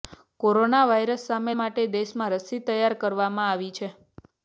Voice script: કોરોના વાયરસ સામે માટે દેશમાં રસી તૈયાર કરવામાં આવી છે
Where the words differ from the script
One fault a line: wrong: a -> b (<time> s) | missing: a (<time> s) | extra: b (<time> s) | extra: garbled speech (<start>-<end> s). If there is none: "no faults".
no faults